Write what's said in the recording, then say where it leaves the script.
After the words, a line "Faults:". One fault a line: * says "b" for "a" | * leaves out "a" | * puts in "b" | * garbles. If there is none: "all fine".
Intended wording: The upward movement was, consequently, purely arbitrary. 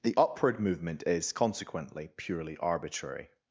The upward movement is, consequently, purely arbitrary.
Faults:
* says "is" for "was"